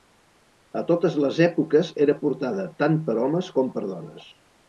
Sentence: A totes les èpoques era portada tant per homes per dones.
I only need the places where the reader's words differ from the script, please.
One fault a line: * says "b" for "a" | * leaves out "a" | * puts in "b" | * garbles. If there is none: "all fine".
* puts in "com"